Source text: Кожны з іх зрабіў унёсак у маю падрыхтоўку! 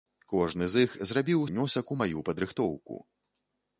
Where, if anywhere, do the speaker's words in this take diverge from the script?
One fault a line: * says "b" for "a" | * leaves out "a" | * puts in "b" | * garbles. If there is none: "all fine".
all fine